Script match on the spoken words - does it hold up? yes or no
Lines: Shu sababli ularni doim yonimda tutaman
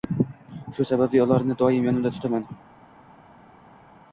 yes